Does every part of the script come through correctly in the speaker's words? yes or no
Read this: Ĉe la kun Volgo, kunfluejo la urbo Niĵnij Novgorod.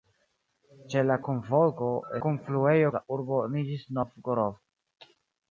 yes